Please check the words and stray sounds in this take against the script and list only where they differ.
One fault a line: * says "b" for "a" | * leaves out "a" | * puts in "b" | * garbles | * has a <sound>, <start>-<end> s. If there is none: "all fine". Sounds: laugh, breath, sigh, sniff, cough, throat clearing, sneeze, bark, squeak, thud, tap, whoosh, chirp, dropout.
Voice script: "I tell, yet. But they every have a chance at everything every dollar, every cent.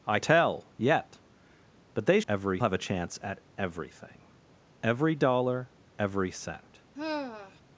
* has a sigh, 6.9-7.6 s